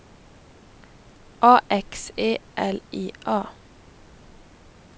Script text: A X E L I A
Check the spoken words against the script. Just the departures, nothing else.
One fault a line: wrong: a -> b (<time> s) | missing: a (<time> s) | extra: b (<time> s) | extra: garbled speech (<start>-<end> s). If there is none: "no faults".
no faults